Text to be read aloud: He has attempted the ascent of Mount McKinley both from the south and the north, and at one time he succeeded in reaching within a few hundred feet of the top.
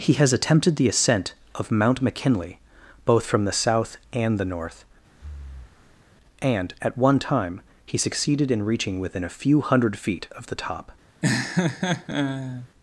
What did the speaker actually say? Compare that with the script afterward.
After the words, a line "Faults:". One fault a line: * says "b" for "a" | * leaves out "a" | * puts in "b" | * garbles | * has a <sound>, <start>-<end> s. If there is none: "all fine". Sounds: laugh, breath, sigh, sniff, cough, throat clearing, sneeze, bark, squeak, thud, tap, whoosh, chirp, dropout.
He has attempted the ascent of Mount McKinley both from the south and the north, and at one time he succeeded in reaching within a few hundred feet of the top.
Faults:
* has a breath, 5.1-6.1 s
* has a laugh, 11.2-12.7 s